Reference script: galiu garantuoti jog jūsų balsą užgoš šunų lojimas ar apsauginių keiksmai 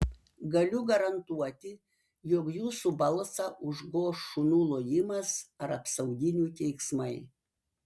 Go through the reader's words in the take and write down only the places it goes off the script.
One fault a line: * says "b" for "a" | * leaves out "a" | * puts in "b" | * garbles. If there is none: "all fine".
all fine